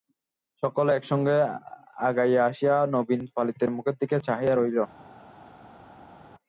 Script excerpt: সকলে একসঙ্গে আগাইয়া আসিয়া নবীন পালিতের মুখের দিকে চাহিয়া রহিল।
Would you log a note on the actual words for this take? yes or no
no